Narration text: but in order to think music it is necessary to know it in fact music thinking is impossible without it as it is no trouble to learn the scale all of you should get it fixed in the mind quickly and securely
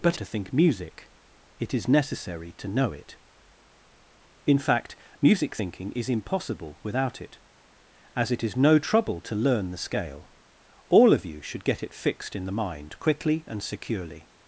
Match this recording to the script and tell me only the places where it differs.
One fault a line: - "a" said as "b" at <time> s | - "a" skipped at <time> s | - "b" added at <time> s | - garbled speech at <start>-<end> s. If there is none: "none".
- "in order" skipped at 0.2 s